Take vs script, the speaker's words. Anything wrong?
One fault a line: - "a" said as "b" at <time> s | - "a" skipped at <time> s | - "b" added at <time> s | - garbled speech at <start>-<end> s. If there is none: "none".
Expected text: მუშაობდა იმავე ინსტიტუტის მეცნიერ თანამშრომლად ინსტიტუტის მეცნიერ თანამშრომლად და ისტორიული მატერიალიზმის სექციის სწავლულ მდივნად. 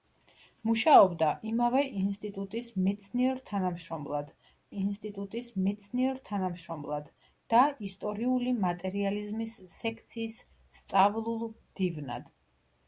none